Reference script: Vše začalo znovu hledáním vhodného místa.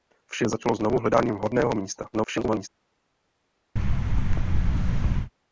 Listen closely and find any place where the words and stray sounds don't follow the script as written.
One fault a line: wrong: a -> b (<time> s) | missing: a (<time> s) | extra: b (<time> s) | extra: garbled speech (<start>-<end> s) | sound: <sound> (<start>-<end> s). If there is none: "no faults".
extra: garbled speech (2.1-2.7 s)
sound: thud (3.8-5.3 s)